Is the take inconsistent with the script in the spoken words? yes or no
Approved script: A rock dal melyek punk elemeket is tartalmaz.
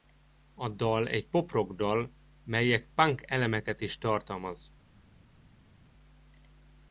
yes